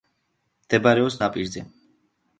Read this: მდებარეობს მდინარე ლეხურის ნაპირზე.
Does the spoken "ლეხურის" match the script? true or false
false